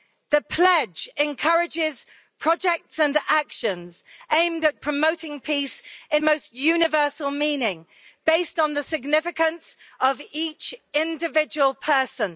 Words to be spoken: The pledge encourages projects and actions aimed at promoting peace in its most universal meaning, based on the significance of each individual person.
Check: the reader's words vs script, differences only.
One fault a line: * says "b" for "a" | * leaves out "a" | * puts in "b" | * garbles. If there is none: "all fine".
* leaves out "its"